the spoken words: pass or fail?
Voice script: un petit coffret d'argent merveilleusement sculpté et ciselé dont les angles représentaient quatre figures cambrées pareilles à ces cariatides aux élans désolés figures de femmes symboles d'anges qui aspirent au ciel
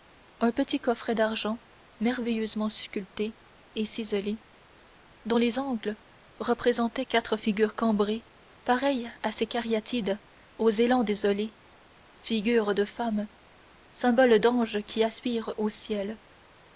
pass